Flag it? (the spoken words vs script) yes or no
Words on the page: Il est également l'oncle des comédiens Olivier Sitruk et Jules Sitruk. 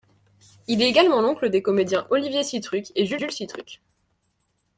yes